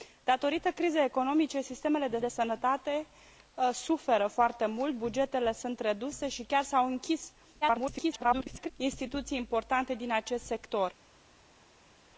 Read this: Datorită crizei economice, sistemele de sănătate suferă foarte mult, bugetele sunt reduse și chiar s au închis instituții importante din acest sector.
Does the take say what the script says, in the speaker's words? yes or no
no